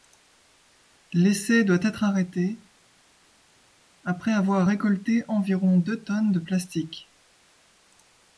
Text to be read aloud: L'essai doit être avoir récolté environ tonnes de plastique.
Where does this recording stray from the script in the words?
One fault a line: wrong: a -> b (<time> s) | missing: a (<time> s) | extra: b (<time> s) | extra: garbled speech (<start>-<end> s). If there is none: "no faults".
extra: arrêté après (2.0 s)
extra: deux (5.8 s)